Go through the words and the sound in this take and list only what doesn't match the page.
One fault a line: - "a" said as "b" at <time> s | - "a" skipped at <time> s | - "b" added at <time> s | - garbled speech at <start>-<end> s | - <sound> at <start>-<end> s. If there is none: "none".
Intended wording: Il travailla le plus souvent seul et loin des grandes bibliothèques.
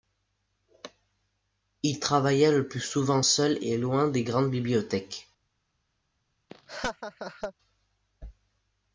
- laugh at 6.5-7.5 s